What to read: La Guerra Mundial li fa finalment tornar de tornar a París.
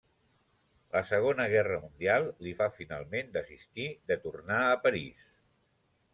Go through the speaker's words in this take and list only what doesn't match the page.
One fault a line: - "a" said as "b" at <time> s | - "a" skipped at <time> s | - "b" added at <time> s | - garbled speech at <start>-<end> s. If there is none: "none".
- "Segona" added at 1.1 s
- "tornar" said as "desistir" at 3.4 s